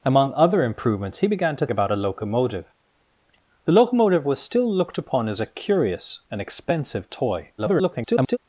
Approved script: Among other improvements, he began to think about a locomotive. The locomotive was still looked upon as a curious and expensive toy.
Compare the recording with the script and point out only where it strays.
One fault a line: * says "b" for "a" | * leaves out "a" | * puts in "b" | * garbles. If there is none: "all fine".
* leaves out "think"
* garbles